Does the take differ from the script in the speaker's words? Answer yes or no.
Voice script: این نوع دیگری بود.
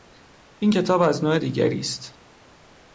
yes